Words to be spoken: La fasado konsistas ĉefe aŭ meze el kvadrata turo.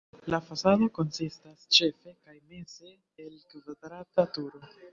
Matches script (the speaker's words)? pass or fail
fail